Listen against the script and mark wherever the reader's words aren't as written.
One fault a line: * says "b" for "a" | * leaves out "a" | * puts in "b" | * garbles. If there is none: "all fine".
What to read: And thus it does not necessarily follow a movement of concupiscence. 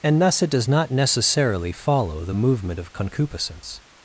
* says "the" for "a"